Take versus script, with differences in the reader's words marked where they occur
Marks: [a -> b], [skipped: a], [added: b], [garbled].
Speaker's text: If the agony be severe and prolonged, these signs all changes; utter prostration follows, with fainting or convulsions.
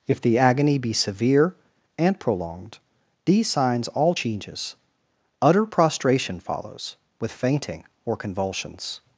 If the agony be severe and prolonged, these signs all changes; utter prostration follows, with fainting or convulsions.